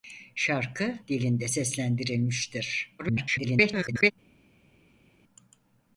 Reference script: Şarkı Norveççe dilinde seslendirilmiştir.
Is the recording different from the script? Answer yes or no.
yes